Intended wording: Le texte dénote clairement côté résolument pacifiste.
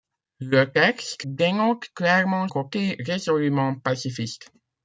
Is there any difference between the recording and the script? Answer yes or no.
no